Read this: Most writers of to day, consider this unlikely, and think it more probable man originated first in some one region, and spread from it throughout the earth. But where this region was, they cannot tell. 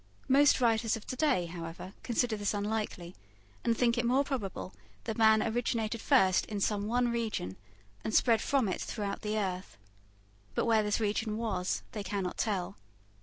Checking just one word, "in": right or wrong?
right